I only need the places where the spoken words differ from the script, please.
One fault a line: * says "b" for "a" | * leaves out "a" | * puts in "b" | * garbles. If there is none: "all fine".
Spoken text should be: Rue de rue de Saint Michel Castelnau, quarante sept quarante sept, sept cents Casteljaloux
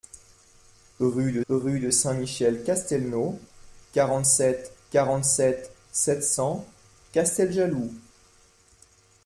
all fine